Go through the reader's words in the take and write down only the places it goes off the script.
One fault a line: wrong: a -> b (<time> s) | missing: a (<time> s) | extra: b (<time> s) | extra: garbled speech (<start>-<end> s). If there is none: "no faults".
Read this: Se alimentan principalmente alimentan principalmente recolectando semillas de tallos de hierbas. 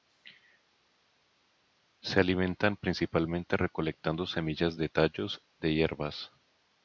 missing: alimentan principalmente (3.6 s)